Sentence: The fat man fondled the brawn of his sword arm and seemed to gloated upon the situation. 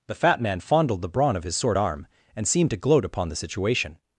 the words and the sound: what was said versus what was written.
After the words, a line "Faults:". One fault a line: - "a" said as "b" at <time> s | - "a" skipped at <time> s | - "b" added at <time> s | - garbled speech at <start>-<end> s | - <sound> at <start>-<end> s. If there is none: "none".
The fat man fondled the brawn of his sword arm and seemed to gloat upon the situation.
Faults:
- "gloated" said as "gloat" at 2.8 s